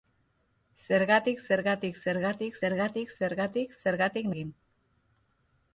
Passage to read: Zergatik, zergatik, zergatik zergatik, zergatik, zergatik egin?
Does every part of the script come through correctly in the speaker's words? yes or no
yes